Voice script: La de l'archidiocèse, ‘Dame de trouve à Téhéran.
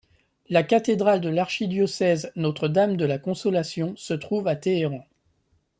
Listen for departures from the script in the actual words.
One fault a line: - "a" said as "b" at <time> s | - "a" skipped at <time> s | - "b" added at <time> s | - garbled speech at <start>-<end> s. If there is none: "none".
- "cathédrale" added at 0.6 s
- "Notre" added at 2.4 s
- "la Consolation se" added at 3.0 s